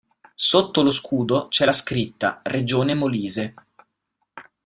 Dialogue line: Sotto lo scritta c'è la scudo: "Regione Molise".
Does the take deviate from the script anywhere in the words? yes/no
yes